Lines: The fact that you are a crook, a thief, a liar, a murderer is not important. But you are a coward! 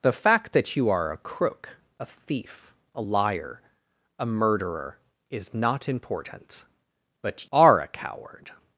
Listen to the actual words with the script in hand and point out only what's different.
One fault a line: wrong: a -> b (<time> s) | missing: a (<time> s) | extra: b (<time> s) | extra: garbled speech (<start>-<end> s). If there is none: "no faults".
missing: you (7.5 s)